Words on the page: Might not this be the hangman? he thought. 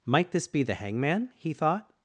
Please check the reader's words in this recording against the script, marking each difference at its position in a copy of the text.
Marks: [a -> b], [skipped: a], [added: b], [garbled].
Might [skipped: not] this be the hangman? he thought.